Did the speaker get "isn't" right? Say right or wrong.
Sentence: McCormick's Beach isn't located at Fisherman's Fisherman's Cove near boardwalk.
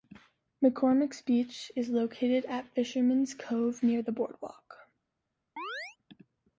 wrong